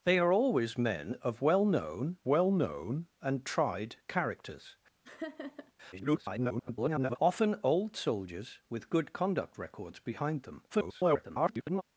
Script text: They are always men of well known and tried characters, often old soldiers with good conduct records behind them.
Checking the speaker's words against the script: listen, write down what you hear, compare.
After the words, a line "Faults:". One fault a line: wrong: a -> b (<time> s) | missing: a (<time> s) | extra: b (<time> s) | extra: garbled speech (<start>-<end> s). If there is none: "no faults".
They are always men of well known well known and tried characters, [garbled] often old soldiers with good conduct records behind them. [garbled]
Faults:
extra: well known (2.3 s)
extra: garbled speech (5.9-7.2 s)
extra: garbled speech (10.7-11.8 s)